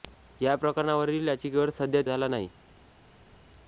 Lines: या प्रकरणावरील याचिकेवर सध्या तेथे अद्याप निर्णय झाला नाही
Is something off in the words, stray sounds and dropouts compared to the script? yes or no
yes